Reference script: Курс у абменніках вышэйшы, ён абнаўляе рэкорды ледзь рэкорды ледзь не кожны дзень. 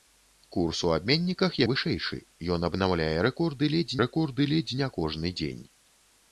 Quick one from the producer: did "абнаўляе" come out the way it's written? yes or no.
yes